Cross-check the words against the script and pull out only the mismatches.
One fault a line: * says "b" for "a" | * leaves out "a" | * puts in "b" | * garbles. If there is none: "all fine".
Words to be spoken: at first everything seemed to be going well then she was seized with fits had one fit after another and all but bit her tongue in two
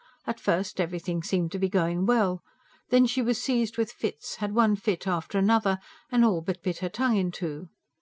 all fine